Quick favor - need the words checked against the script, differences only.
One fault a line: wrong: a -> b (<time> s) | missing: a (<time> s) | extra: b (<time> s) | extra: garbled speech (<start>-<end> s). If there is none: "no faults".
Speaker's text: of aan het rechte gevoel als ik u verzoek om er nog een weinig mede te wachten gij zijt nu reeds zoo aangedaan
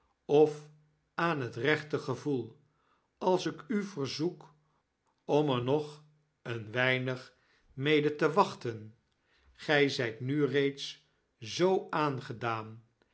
no faults